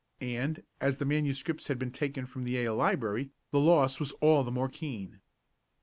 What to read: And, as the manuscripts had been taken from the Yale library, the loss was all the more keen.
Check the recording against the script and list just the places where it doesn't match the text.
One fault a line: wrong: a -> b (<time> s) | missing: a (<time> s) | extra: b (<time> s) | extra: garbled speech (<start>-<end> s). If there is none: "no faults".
no faults